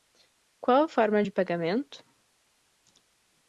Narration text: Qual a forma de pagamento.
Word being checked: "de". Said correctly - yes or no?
yes